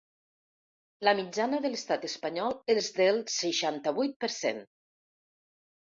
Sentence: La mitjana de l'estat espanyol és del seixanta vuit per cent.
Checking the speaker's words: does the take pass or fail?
pass